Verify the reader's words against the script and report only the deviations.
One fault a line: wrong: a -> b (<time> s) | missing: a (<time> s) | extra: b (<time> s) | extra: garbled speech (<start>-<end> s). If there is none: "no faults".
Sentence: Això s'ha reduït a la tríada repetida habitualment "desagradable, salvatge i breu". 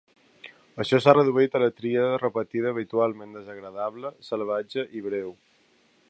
no faults